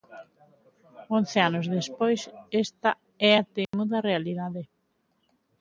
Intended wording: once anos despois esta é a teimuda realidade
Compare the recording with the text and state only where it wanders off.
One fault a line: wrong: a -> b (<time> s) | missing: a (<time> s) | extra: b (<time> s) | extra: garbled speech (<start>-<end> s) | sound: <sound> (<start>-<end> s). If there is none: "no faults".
sound: dropout (3.6-3.7 s)